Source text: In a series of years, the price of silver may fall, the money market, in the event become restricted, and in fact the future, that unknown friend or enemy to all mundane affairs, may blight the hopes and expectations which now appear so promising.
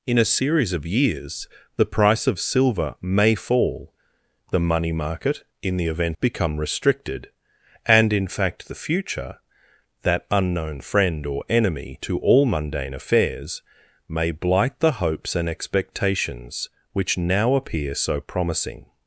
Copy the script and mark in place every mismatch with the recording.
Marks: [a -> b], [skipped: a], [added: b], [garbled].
In a series of years, the price of silver may fall, the money market, in the event become restricted, and in fact the future, that unknown friend or enemy to all mundane affairs, may blight the hopes and expectations which now appear so promising.